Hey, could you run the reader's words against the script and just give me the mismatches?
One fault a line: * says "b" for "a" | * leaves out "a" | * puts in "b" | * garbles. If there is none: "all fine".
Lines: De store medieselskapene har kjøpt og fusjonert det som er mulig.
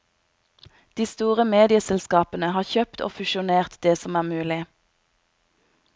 all fine